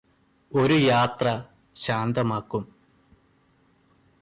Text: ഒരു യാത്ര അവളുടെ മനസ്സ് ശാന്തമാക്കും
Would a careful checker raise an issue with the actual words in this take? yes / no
yes